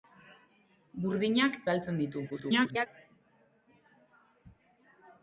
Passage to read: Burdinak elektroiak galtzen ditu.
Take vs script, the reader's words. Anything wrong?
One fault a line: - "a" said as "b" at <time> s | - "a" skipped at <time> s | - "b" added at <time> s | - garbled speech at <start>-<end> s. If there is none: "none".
- "elektroiak" skipped at 1.6 s
- garbled speech at 2.3-2.9 s